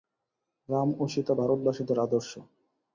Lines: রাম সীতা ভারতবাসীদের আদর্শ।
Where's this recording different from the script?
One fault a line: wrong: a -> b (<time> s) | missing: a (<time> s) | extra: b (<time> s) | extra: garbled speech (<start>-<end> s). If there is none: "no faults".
extra: ও (1.0 s)